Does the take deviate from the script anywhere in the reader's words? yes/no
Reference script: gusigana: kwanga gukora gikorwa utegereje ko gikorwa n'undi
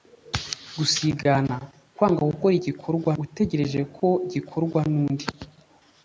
no